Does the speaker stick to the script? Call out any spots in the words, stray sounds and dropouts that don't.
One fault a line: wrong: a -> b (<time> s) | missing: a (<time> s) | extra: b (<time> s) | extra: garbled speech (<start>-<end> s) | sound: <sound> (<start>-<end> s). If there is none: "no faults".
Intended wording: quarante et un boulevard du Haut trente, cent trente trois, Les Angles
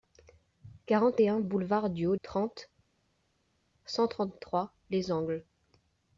no faults